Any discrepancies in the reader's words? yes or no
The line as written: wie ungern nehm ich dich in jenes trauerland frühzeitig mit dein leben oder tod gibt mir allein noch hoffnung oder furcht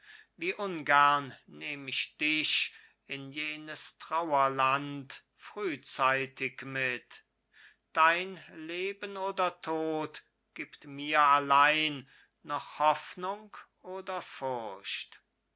no